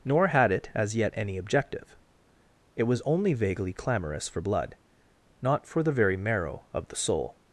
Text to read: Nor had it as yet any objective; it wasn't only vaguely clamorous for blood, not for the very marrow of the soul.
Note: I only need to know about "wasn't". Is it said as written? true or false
false